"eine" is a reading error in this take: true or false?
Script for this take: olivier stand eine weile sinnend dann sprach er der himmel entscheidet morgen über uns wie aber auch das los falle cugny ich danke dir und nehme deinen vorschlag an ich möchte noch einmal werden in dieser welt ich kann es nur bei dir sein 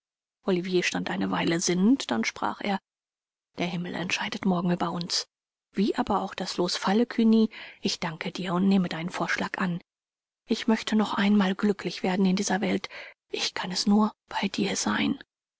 false